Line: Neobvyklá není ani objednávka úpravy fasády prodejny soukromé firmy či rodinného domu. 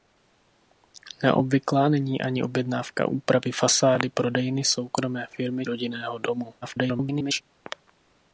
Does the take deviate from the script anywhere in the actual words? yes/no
yes